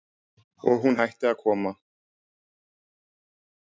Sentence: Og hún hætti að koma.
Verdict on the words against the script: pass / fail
pass